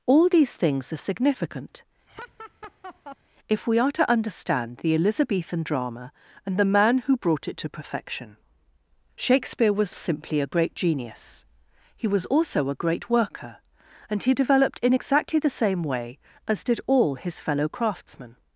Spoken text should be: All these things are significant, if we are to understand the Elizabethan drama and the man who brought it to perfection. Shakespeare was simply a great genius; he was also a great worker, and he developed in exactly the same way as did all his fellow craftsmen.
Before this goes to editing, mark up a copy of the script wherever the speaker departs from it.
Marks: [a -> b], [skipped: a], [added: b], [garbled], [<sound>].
All these things are significant, [laugh] if we are to understand the Elizabethan drama and the man who brought it to perfection. Shakespeare was simply a great genius; he was also a great worker, and he developed in exactly the same way as did all his fellow craftsmen.